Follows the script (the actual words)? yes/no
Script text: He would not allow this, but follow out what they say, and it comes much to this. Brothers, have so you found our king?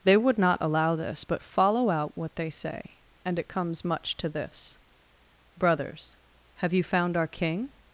no